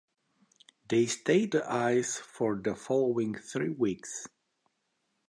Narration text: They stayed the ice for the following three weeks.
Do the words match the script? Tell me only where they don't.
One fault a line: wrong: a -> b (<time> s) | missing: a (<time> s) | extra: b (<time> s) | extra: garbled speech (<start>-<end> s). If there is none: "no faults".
no faults